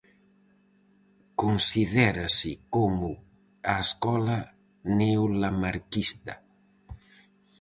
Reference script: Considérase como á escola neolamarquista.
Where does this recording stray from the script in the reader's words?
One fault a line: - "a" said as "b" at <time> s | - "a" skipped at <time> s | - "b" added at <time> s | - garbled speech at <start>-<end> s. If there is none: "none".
none